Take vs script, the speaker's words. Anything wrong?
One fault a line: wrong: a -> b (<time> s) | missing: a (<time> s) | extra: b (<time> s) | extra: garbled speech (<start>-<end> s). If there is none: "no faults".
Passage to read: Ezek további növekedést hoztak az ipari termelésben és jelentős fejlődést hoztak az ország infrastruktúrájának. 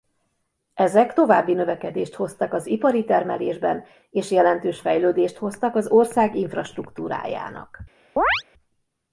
no faults